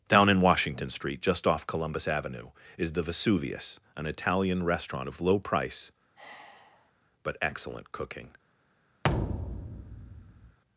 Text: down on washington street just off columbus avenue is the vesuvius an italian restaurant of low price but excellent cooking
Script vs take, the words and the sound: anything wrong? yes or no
yes